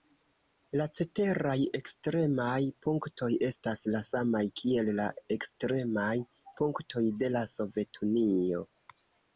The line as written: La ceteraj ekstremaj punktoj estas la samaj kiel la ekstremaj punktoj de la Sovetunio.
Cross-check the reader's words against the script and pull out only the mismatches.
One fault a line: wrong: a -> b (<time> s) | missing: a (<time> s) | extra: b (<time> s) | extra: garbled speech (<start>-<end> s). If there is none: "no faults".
no faults